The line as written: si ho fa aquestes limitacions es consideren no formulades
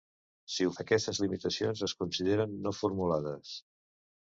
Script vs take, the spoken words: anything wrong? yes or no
yes